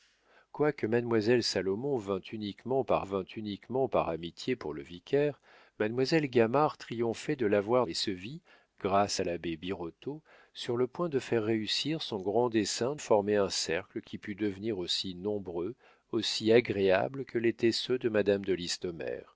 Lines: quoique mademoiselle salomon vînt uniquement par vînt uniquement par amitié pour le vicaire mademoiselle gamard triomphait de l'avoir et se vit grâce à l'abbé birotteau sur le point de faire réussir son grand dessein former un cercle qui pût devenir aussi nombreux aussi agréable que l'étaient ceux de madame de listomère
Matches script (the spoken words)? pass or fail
pass